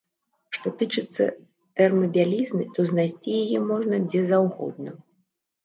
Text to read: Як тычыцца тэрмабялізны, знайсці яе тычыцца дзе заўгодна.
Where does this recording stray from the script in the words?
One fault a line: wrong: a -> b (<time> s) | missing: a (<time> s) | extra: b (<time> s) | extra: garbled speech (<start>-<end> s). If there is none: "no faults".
wrong: Як -> Што (0.6 s)
extra: то (2.8 s)
wrong: тычыцца -> можна (3.7 s)